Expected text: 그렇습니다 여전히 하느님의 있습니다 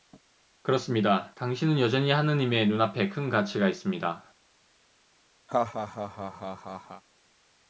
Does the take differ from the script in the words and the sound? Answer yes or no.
yes